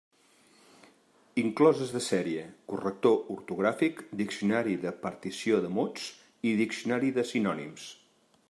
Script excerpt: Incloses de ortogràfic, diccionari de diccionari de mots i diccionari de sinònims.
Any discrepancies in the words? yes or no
yes